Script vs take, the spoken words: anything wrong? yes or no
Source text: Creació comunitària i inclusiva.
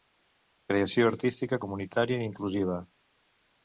yes